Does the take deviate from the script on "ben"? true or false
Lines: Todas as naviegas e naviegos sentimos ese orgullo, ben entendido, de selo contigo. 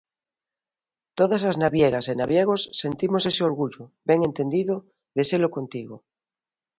false